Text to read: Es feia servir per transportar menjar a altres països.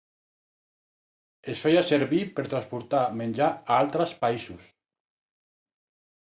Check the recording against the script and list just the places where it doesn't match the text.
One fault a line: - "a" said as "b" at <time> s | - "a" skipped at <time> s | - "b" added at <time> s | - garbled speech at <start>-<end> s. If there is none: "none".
none